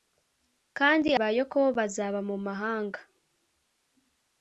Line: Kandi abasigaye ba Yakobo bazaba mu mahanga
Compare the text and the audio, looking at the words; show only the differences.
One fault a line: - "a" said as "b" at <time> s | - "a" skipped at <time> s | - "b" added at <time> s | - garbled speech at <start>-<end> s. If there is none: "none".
- "abasigaye" skipped at 1.1 s